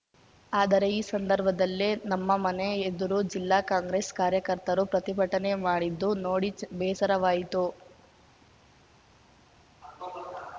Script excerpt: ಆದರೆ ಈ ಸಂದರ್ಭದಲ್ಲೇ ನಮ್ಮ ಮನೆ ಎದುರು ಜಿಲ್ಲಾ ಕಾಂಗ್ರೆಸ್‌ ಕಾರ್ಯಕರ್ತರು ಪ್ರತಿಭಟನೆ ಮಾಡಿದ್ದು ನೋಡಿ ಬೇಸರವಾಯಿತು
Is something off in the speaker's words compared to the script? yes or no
no